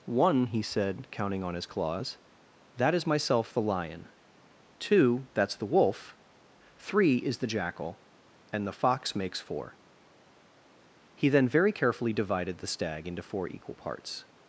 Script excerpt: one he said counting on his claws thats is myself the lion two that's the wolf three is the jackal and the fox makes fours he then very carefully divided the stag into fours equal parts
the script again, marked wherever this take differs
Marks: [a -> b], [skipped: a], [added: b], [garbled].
one he said counting on his claws [thats -> that] is myself the lion two that's the wolf three is the jackal and the fox makes [fours -> four] he then very carefully divided the stag into [fours -> four] equal parts